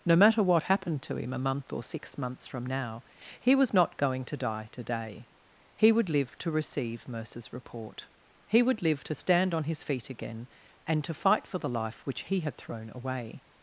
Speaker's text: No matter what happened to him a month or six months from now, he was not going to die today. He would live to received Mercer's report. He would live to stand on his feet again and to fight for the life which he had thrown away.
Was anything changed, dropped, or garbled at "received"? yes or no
yes